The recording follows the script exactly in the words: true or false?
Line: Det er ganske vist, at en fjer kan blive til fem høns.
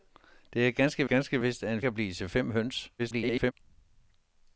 false